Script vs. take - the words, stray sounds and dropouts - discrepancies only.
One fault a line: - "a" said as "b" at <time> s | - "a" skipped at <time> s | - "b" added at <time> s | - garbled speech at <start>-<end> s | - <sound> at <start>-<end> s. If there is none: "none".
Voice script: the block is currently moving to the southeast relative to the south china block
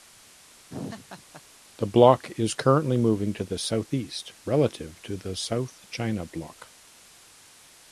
- laugh at 0.7-1.4 s